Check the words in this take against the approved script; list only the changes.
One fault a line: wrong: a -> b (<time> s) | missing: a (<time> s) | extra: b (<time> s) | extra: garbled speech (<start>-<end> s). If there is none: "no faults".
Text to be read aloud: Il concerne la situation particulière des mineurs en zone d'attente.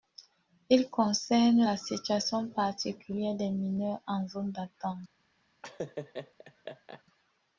no faults